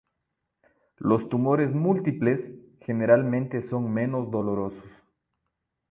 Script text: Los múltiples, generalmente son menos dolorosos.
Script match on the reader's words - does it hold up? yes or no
no